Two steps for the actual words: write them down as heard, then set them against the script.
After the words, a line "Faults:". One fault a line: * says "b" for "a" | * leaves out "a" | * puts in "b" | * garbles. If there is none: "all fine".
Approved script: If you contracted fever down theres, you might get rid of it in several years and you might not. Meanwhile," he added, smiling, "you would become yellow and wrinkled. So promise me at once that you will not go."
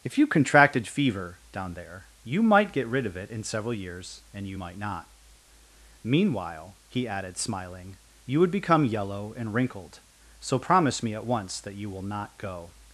If you contracted fever down there, you might get rid of it in several years and you might not. Meanwhile," he added, smiling, "you would become yellow and wrinkled. So promise me at once that you will not go."
Faults:
* says "there" for "theres"